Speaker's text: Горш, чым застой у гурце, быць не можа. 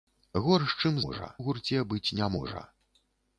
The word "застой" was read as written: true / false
false